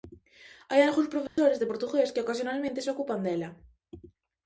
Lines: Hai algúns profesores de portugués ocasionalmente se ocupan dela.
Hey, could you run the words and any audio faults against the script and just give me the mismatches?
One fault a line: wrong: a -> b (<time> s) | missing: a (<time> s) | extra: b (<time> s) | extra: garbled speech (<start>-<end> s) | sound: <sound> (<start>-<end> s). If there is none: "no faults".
sound: dropout (1.3-1.4 s)
extra: que (2.1 s)